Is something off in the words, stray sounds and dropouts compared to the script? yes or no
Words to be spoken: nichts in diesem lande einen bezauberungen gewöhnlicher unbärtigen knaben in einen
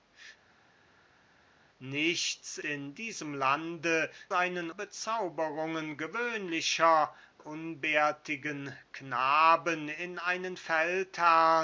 no